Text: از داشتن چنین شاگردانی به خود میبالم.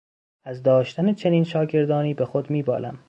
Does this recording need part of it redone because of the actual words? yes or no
no